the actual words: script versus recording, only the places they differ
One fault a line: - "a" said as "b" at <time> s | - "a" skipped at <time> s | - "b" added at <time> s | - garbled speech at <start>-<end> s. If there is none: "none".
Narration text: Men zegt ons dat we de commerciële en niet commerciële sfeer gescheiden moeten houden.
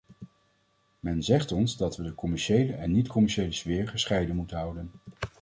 none